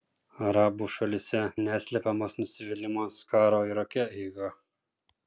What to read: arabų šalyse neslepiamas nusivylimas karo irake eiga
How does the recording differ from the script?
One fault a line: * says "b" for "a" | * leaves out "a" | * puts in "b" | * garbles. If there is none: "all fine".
all fine